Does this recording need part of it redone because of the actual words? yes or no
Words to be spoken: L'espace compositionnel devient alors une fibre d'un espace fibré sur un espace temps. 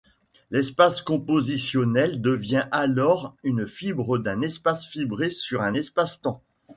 no